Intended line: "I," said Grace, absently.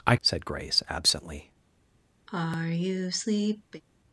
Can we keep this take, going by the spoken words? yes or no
yes